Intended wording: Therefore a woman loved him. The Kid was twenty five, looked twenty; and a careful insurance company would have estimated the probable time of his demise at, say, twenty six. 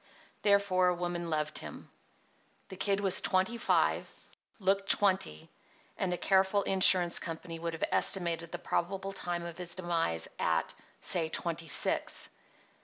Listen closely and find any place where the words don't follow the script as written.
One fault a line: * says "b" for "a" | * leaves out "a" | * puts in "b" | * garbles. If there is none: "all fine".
all fine